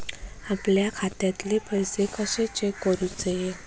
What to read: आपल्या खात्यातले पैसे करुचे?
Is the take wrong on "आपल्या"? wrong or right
right